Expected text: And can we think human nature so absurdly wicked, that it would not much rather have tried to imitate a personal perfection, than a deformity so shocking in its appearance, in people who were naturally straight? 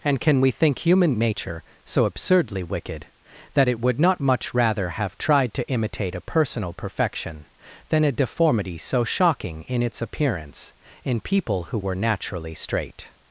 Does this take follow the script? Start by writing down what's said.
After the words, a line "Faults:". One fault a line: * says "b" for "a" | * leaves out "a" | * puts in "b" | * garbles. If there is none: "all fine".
And can we think human nature so absurdly wicked, that it would not much rather have tried to imitate a personal perfection, than a deformity so shocking in its appearance, in people who were naturally straight?
Faults:
all fine